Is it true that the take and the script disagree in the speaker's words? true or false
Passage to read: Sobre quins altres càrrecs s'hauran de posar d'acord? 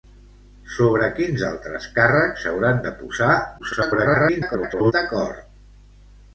true